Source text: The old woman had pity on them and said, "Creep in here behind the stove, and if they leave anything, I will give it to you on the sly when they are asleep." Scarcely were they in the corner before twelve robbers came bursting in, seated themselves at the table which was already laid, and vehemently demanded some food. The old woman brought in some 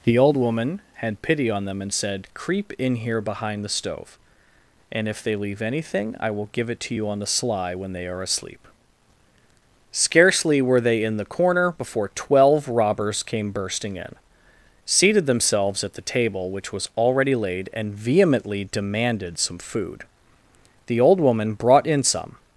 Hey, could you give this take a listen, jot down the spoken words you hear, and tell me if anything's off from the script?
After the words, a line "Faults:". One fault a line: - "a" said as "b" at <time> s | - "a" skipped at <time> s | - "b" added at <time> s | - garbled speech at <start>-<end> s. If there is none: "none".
The old woman had pity on them and said, "Creep in here behind the stove, and if they leave anything, I will give it to you on the sly when they are asleep." Scarcely were they in the corner before twelve robbers came bursting in, seated themselves at the table which was already laid, and vehemently demanded some food. The old woman brought in some
Faults:
none